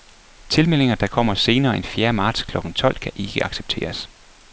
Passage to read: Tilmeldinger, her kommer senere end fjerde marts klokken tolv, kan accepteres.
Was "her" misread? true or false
true